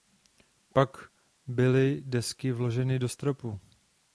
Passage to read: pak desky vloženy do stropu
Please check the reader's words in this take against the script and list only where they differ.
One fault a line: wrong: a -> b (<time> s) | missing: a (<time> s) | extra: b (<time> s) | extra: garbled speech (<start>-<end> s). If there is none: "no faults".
extra: byly (1.5 s)